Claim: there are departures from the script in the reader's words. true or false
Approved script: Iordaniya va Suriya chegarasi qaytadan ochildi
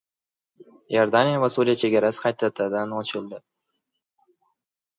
false